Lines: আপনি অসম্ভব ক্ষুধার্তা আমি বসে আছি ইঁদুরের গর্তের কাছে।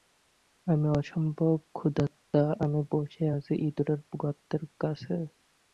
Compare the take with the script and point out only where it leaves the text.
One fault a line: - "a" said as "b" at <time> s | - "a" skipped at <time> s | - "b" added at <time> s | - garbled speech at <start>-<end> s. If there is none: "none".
- "আপনি" said as "আমি" at 0.7 s